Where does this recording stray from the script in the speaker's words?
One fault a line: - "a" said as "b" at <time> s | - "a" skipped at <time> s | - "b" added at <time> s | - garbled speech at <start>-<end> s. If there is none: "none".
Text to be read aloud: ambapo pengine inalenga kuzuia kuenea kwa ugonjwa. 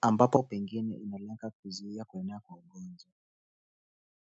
none